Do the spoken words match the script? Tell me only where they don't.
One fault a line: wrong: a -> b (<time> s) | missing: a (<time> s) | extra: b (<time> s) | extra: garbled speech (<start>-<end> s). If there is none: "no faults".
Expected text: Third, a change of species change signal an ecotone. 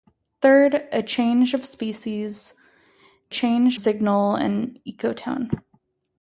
no faults